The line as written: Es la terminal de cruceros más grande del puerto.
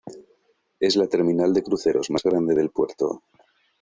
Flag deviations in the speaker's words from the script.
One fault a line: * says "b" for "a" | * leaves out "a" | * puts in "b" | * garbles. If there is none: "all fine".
all fine